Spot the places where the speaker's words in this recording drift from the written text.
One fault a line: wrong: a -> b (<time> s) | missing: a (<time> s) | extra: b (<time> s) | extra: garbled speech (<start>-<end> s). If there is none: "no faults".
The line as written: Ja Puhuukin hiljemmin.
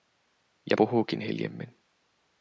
no faults